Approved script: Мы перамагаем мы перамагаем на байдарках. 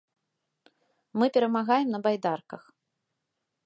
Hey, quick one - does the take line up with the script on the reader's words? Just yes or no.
no